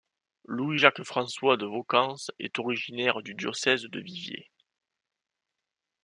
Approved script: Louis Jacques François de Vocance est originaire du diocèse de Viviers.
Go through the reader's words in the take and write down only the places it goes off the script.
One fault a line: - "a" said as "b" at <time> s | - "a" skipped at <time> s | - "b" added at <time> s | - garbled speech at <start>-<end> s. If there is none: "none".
none